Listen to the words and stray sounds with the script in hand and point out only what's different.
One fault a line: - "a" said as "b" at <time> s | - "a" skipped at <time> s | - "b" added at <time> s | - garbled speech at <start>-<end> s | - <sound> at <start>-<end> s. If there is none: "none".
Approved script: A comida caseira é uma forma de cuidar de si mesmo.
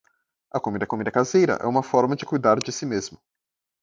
- "comida" added at 0.9 s